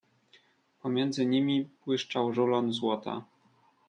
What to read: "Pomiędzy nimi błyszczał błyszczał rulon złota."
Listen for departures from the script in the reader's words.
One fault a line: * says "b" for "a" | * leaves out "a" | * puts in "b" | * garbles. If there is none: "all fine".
* leaves out "błyszczał"